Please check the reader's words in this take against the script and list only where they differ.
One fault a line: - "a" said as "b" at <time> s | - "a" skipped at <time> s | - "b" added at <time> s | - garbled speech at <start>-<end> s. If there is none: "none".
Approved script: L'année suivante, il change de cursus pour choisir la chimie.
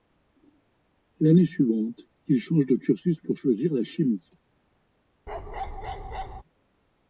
none